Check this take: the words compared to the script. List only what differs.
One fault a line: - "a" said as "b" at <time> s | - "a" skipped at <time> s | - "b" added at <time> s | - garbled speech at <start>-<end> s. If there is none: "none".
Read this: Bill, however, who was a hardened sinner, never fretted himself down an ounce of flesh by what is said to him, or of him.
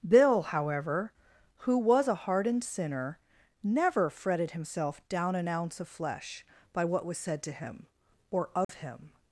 - "is" said as "was" at 7.1 s